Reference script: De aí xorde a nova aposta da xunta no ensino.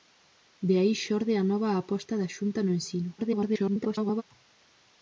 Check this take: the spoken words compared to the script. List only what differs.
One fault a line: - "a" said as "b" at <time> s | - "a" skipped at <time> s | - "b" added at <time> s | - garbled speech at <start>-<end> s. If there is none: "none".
- garbled speech at 3.2-4.2 s